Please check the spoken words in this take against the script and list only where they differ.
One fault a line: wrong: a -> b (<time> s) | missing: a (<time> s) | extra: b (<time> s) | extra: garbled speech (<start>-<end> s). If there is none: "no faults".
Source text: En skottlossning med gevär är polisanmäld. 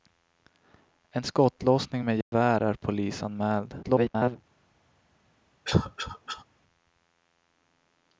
extra: garbled speech (3.8-4.4 s)